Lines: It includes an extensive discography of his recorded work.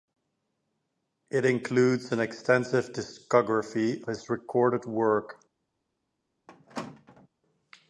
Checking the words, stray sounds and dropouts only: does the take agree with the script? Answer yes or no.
no